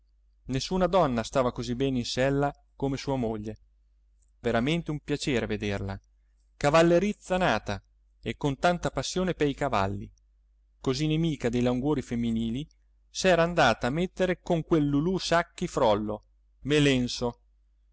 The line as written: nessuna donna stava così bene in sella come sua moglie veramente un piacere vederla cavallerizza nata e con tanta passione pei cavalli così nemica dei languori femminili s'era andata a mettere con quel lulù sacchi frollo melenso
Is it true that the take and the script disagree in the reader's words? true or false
false